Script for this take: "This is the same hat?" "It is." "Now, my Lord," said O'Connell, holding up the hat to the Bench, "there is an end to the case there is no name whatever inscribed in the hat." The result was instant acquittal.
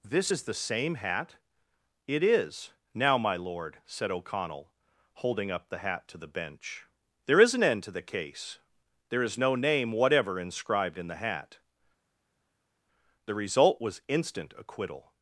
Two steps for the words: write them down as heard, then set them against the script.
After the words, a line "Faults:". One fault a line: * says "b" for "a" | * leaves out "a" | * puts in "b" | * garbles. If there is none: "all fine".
"This is the same hat?" "It is." "Now, my Lord," said O'Connell, holding up the hat to the Bench, "there is an end to the case there is no name whatever inscribed in the hat." The result was instant acquittal.
Faults:
all fine